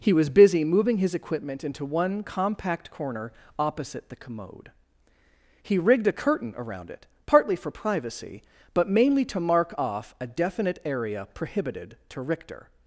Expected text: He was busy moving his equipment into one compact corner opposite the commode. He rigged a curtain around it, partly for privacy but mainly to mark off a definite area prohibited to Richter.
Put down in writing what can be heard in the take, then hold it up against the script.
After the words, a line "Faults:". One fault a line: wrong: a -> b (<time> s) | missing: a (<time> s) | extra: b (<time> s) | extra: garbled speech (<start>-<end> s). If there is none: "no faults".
He was busy moving his equipment into one compact corner opposite the commode. He rigged a curtain around it, partly for privacy but mainly to mark off a definite area prohibited to Richter.
Faults:
no faults